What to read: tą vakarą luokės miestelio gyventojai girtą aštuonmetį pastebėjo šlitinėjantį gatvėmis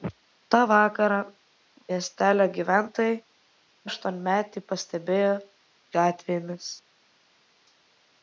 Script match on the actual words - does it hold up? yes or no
no